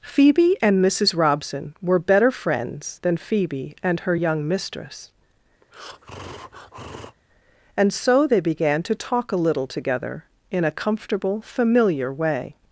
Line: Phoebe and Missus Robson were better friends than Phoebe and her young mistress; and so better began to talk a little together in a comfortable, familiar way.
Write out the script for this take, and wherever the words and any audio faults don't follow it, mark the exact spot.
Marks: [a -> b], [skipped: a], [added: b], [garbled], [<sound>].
Phoebe and Missus Robson were better friends than Phoebe and her young mistress; [breath] and so [better -> they] began to talk a little together in a comfortable, familiar way.